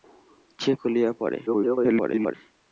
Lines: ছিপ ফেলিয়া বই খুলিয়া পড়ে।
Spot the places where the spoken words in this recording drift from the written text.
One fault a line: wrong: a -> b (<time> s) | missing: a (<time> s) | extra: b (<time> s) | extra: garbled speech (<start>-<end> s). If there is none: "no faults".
missing: ফেলিয়া বই (0.8 s)
extra: garbled speech (1.5-2.3 s)